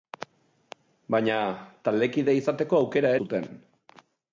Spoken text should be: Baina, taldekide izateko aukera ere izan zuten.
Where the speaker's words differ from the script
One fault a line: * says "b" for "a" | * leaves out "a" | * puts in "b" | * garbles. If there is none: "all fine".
* leaves out "ere izan"